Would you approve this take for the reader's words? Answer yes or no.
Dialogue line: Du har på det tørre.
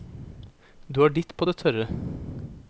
no